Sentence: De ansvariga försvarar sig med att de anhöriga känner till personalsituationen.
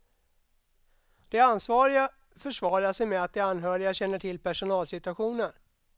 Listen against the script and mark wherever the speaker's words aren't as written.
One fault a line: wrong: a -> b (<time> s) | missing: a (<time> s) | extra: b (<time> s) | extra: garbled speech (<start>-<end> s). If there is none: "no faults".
no faults